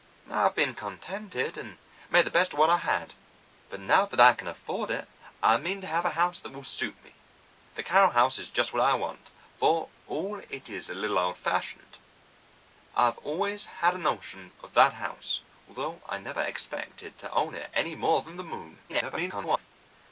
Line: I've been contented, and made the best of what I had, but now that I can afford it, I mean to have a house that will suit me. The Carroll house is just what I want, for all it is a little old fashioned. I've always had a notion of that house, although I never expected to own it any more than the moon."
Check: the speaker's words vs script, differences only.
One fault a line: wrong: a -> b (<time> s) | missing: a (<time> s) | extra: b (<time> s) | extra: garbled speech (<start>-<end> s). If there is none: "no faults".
extra: garbled speech (18.9-19.7 s)